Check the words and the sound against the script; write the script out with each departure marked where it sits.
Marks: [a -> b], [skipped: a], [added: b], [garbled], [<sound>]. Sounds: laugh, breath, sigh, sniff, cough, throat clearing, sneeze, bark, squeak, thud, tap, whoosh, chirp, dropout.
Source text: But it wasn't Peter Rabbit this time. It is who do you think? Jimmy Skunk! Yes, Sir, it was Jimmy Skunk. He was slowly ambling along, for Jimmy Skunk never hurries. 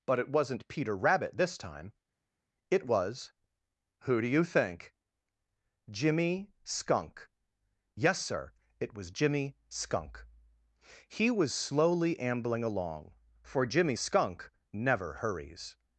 But it wasn't Peter Rabbit this time. It [is -> was] who do you think? Jimmy Skunk! Yes, Sir, it was Jimmy Skunk. He was slowly ambling along, for Jimmy Skunk never hurries.